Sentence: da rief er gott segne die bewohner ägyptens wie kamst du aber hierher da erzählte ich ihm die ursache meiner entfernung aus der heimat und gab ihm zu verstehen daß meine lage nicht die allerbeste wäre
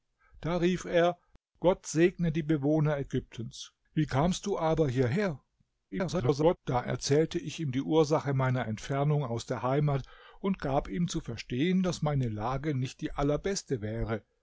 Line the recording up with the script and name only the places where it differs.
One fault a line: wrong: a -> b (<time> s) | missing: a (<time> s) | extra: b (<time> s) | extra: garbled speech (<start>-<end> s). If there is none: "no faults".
extra: garbled speech (5.9-6.6 s)